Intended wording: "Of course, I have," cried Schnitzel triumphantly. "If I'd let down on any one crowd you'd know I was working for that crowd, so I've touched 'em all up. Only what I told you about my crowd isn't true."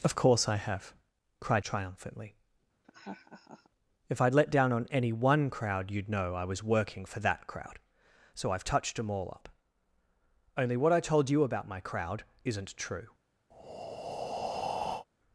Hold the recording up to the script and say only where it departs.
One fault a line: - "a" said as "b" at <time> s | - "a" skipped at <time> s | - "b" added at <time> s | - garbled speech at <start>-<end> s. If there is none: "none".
- "Schnitzel" skipped at 1.6 s